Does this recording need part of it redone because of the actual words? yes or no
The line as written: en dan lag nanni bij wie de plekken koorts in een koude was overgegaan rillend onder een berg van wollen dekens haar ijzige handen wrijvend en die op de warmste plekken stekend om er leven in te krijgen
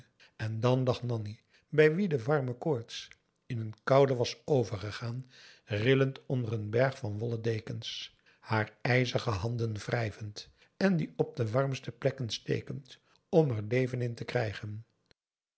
yes